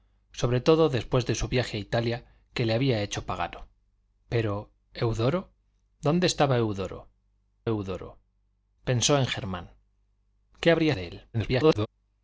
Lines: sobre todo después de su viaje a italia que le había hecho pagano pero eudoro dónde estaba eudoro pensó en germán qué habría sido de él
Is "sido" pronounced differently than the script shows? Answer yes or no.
yes